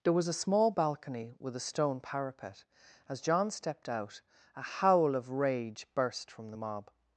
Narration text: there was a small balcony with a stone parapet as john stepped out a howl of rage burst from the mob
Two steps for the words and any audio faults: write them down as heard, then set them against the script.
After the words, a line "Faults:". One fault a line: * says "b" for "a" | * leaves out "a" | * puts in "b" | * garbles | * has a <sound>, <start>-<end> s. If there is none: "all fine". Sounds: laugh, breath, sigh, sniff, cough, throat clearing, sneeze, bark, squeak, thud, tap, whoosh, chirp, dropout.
there was a small balcony with a stone parapet as john stepped out a howl of rage burst from the mob
Faults:
all fine